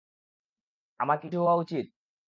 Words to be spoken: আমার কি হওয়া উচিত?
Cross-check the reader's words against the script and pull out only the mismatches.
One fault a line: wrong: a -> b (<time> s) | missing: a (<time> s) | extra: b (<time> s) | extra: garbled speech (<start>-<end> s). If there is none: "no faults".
no faults